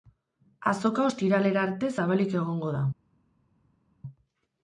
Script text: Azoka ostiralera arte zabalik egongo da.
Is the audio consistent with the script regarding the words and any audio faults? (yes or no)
yes